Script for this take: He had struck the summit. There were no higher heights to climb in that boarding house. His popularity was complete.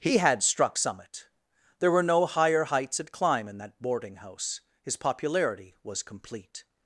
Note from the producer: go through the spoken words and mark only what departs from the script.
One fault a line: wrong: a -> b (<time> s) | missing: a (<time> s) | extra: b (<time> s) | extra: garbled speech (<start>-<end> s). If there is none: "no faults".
missing: the (0.8 s)
wrong: to -> at (3.0 s)